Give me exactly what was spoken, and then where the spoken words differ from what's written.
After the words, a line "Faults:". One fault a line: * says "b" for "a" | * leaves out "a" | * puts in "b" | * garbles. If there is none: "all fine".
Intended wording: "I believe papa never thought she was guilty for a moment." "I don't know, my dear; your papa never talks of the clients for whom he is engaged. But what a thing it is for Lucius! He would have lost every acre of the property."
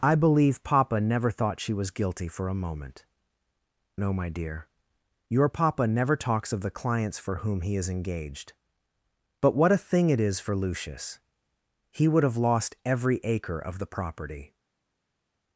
"I believe papa never thought she was guilty for a moment." "know, my dear; your papa never talks of the clients for whom he is engaged. But what a thing it is for Lucius! He would have lost every acre of the property."
Faults:
* leaves out "I don't"